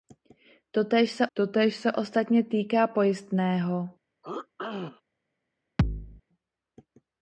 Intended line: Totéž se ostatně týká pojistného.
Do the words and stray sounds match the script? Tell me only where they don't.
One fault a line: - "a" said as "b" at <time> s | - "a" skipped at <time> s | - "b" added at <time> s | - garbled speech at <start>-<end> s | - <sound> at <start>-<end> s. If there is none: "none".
- "totéž se" added at 1.3 s
- throat clearing at 4.2-5.0 s
- thud at 5.8-6.2 s